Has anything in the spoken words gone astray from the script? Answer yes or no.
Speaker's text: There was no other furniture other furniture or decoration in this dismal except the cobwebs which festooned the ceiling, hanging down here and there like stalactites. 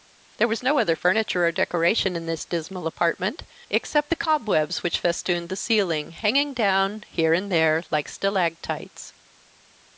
yes